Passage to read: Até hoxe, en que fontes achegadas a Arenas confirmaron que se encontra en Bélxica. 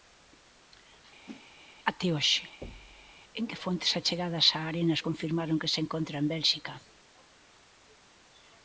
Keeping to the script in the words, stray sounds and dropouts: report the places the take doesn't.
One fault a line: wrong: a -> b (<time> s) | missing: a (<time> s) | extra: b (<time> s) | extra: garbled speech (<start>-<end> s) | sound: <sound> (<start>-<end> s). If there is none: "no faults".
sound: whoosh (1.3-1.5 s)
sound: thud (2.6-3.1 s)